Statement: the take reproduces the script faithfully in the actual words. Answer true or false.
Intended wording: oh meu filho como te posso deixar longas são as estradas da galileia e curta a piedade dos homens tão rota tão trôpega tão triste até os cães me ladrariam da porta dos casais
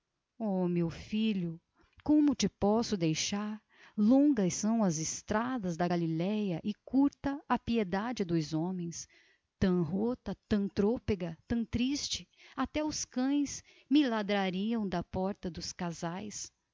true